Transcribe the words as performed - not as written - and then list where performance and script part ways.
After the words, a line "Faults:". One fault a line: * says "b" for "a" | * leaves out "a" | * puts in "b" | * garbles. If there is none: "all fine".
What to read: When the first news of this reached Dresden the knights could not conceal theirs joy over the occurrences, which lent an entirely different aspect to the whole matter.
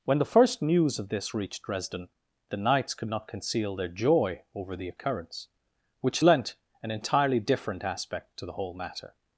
When the first news of this reached Dresden the knights could not conceal their joy over the occurrence, which lent an entirely different aspect to the whole matter.
Faults:
* says "their" for "theirs"
* says "occurrence" for "occurrences"